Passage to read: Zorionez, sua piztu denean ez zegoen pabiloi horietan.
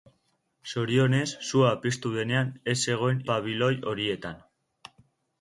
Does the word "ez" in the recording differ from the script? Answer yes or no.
no